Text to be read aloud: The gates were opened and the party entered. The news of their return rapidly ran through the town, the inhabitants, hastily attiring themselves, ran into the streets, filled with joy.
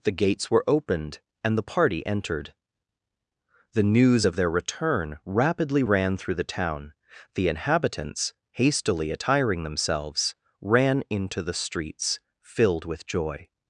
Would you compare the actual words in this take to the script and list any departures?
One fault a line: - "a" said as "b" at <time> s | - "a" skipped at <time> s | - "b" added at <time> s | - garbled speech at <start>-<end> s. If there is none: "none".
none